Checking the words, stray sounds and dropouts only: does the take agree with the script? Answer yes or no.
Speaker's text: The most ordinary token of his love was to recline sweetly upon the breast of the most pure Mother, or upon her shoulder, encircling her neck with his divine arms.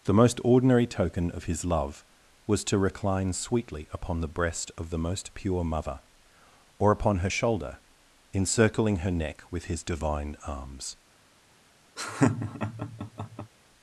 no